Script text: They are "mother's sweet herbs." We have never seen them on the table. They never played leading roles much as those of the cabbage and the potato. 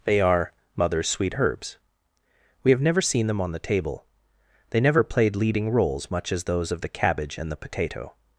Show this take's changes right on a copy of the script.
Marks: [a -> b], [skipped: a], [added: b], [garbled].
They are "mother's sweet herbs." We have never seen them on the table. They never played leading roles much as those of the cabbage and the potato.